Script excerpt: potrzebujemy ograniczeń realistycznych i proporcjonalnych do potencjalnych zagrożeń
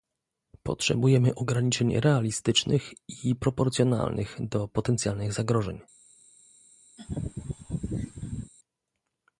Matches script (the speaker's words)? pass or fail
pass